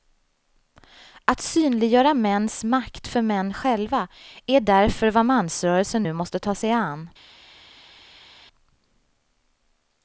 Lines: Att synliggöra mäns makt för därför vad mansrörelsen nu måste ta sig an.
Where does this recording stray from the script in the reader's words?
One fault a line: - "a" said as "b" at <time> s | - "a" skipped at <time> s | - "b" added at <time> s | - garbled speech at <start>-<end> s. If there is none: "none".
- "män själva är" added at 3.2 s